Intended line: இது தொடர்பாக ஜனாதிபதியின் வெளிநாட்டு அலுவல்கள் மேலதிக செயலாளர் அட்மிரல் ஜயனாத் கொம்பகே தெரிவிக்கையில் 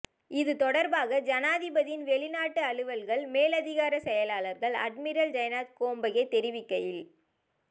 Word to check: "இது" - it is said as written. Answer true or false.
true